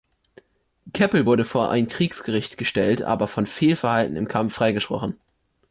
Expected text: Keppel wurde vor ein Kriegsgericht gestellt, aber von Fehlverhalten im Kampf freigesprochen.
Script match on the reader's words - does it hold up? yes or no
yes